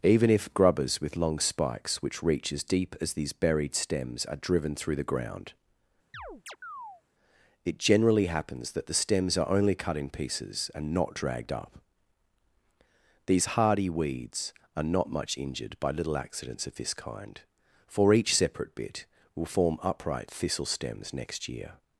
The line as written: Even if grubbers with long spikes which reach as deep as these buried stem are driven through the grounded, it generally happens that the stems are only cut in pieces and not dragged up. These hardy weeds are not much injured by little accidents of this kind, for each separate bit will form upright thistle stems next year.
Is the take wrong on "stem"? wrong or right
wrong